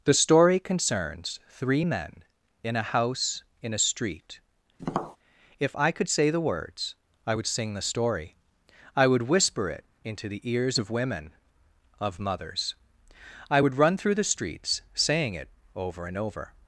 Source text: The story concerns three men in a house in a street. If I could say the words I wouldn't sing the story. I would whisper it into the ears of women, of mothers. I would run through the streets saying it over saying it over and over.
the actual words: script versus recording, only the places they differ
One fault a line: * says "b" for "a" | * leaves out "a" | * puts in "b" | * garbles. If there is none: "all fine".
* says "would" for "wouldn't"
* leaves out "saying it over"